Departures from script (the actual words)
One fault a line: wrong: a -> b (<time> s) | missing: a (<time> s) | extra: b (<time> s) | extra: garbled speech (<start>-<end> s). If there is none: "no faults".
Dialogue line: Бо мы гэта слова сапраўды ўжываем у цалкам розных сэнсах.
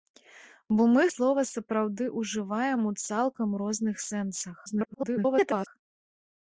missing: гэта (1.0 s)
extra: garbled speech (4.7-5.7 s)